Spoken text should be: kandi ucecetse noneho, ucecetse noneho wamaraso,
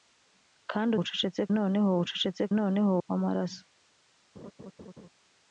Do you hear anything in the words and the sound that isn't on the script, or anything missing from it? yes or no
yes